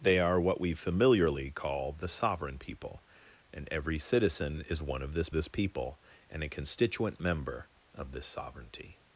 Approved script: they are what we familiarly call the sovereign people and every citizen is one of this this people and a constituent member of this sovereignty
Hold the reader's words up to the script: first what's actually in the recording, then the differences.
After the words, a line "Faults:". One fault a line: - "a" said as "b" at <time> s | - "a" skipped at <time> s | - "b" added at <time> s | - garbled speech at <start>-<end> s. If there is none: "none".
they are what we familiarly call the sovereign people and every citizen is one of this this people and a constituent member of this sovereignty
Faults:
none